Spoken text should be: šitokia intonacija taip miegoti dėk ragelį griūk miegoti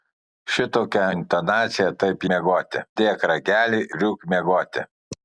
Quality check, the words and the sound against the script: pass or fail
pass